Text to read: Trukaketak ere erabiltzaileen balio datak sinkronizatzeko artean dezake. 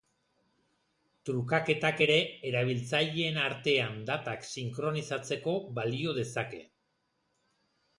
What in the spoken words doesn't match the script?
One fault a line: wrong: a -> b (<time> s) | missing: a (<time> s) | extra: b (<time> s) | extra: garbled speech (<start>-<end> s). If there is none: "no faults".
wrong: balio -> artean (3.5 s)
wrong: artean -> balio (5.8 s)